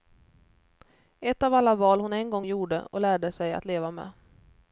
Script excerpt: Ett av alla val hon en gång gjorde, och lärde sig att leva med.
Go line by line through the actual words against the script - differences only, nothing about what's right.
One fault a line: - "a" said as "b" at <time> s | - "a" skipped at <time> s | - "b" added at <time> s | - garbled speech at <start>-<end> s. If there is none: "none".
none